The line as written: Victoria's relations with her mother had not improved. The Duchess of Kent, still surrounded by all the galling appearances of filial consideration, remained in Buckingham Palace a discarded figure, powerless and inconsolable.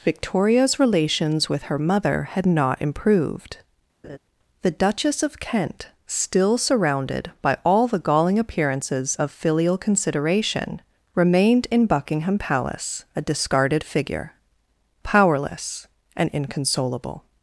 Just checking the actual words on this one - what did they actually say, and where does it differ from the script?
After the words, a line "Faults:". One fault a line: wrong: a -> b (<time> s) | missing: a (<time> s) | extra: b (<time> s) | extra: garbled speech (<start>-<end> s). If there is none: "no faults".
Victoria's relations with her mother had not improved. The Duchess of Kent, still surrounded by all the galling appearances of filial consideration, remained in Buckingham Palace a discarded figure, powerless and inconsolable.
Faults:
no faults